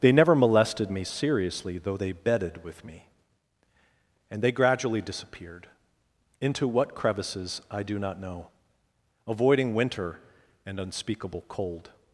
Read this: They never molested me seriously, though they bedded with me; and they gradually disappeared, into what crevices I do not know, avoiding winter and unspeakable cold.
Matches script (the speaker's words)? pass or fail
pass